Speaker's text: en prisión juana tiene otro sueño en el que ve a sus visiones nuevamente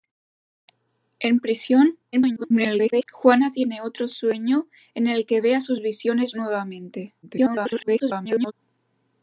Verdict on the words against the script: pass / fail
fail